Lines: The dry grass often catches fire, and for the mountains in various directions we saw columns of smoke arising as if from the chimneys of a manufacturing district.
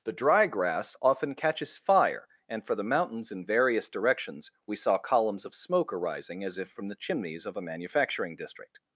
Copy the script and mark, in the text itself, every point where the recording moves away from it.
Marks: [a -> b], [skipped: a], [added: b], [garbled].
The dry grass often catches fire, and for the mountains in various directions we saw columns of smoke arising as if from the chimneys of a manufacturing district.